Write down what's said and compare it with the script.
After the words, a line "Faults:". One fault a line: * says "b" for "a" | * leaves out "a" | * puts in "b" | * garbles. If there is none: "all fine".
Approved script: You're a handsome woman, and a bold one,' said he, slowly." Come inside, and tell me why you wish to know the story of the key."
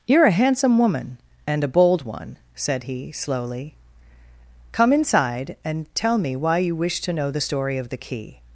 You're a handsome woman, and a bold one,' said he, slowly." Come inside, and tell me why you wish to know the story of the key."
Faults:
all fine